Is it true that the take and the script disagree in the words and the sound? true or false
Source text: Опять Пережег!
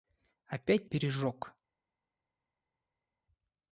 false